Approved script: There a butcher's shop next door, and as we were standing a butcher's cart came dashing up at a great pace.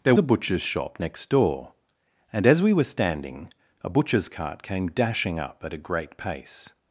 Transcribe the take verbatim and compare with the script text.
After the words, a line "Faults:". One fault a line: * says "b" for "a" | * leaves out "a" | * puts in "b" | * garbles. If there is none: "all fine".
There a butcher's shop next door, and as we were standing a butcher's cart came dashing up at a great pace.
Faults:
all fine